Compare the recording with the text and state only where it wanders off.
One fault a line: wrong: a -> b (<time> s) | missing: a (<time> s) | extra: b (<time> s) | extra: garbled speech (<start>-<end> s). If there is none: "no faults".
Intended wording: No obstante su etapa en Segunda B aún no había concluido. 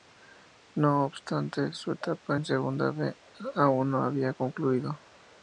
no faults